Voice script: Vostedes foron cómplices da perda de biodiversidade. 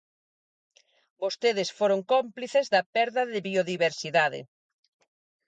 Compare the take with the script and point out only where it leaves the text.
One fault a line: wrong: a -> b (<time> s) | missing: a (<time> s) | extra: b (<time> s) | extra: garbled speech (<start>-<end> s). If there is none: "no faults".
no faults